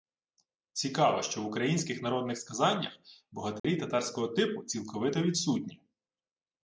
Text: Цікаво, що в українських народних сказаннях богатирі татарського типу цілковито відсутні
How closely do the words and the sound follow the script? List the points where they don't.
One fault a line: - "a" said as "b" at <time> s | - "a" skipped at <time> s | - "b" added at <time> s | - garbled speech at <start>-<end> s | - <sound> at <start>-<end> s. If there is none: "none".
- dropout at 3.6-3.6 s